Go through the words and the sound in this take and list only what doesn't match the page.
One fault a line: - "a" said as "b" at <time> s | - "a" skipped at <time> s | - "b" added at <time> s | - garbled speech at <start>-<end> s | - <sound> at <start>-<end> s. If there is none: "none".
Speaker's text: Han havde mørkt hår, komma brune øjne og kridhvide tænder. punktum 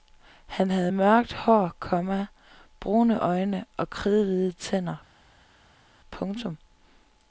none